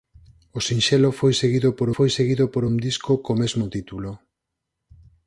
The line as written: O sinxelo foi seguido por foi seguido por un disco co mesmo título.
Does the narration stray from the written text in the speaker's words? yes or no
no